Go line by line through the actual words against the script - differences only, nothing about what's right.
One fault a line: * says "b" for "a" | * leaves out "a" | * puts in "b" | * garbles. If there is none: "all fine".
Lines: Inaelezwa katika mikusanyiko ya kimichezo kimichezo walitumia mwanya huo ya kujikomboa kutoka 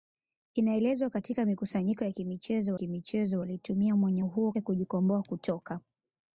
all fine